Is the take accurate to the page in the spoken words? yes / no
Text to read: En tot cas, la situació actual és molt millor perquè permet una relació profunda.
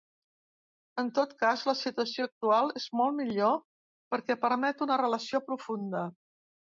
yes